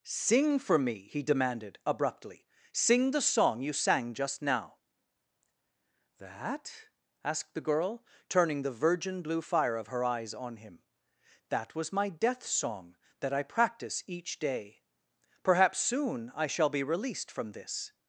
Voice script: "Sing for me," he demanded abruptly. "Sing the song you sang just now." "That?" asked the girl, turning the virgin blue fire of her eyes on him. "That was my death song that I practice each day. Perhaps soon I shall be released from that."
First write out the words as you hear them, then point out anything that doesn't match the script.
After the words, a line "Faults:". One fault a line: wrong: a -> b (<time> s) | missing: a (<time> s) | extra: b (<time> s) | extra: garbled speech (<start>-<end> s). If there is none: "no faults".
"Sing for me," he demanded abruptly. "Sing the song you sang just now." "That?" asked the girl, turning the virgin blue fire of her eyes on him. "That was my death song that I practice each day. Perhaps soon I shall be released from this."
Faults:
wrong: that -> this (17.5 s)